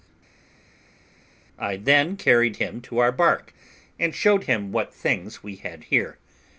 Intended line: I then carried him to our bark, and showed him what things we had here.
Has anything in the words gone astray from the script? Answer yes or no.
no